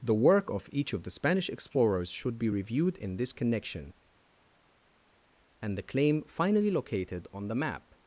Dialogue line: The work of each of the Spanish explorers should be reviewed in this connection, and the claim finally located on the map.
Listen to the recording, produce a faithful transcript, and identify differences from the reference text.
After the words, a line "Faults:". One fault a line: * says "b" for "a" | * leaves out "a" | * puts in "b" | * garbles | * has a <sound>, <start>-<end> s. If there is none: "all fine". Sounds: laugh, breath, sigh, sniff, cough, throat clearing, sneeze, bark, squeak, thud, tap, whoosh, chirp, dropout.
The work of each of the Spanish explorers should be reviewed in this connection, and the claim finally located on the map.
Faults:
all fine